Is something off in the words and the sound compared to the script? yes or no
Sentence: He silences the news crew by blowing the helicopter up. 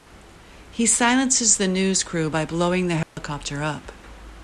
yes